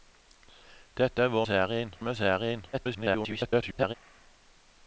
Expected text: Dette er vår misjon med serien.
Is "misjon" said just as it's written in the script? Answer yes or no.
no